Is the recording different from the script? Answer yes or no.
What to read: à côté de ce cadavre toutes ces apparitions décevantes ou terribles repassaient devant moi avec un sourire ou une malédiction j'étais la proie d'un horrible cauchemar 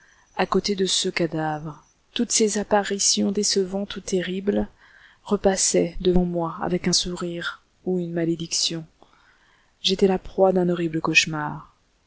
no